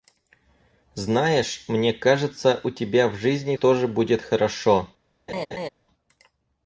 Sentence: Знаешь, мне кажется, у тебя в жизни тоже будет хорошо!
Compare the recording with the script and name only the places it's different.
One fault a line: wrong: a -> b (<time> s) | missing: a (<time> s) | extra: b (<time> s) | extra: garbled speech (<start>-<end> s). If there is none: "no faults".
no faults